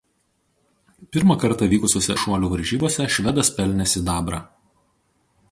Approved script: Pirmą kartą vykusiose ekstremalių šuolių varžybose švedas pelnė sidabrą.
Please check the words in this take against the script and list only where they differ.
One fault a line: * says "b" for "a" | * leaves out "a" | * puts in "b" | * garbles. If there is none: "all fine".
* leaves out "ekstremalių"